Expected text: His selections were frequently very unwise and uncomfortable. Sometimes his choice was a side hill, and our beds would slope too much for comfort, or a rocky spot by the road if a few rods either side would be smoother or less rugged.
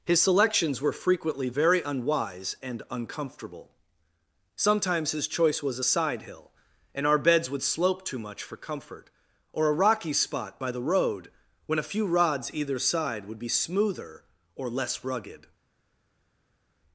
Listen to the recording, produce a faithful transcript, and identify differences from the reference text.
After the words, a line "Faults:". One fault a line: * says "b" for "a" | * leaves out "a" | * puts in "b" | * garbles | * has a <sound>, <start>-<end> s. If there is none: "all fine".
His selections were frequently very unwise and uncomfortable. Sometimes his choice was a side hill, and our beds would slope too much for comfort, or a rocky spot by the road when a few rods either side would be smoother or less rugged.
Faults:
* says "when" for "if"